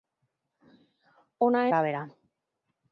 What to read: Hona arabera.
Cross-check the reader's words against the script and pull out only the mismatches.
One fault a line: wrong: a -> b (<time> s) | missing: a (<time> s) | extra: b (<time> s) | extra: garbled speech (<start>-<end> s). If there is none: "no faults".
no faults